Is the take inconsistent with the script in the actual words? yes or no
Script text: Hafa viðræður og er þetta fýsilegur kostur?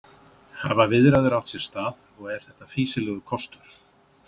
yes